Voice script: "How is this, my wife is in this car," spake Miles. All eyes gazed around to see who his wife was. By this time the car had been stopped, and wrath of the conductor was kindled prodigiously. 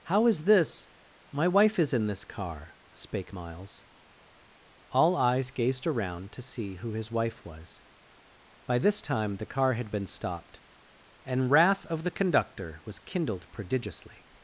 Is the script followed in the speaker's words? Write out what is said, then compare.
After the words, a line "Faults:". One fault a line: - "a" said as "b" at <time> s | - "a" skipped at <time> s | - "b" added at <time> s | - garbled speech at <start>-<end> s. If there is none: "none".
"How is this, my wife is in this car," spake Miles. All eyes gazed around to see who his wife was. By this time the car had been stopped, and wrath of the conductor was kindled prodigiously.
Faults:
none